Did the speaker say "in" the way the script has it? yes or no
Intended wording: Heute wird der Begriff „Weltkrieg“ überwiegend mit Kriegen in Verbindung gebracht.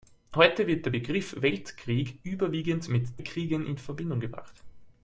yes